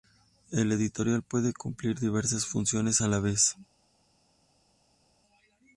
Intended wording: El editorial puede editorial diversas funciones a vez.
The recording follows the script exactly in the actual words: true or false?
false